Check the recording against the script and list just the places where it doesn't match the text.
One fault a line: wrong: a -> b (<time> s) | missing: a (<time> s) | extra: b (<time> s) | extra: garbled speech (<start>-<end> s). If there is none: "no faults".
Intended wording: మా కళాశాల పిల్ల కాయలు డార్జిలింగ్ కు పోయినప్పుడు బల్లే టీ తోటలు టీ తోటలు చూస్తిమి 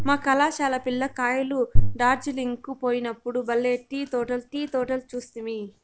no faults